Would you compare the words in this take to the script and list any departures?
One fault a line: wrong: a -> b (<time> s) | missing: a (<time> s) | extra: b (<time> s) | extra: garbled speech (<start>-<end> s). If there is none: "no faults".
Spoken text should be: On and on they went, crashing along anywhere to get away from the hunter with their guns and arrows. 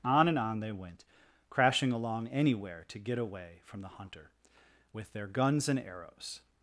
no faults